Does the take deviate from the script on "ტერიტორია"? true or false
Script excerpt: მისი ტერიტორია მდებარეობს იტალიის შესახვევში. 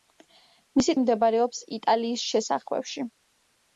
true